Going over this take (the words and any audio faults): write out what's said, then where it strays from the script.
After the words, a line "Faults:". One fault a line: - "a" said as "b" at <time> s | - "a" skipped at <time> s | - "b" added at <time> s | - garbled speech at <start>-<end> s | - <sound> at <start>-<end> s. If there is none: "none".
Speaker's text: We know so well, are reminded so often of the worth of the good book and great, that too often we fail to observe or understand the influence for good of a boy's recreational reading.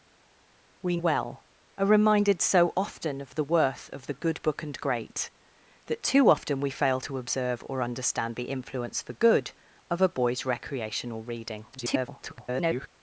We well, are reminded so often of the worth of the good book and great, that too often we fail to observe or understand the influence for good of a boy's recreational reading. [garbled]
Faults:
- "know so" skipped at 1.0 s
- garbled speech at 11.7-12.9 s